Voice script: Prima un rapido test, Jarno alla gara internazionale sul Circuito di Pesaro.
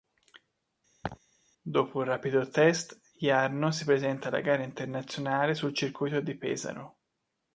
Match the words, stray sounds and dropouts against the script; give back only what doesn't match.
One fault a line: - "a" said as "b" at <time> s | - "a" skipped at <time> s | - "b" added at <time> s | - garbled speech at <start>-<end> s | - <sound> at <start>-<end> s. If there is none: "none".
- laugh at 1.0-1.2 s
- "Prima" said as "Dopo" at 1.6 s
- "si presenta" added at 3.7 s